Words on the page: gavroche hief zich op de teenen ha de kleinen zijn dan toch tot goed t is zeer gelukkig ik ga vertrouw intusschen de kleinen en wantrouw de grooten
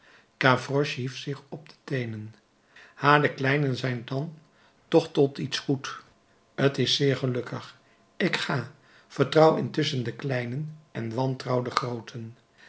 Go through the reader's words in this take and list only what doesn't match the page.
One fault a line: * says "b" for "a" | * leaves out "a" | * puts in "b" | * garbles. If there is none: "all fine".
* puts in "iets"